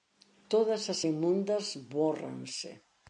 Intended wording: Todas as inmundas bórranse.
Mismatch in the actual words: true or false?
false